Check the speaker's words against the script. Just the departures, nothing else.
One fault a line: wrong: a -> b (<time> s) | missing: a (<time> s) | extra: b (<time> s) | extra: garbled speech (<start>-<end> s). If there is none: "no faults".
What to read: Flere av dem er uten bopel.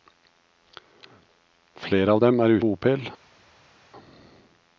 missing: uten (2.6 s)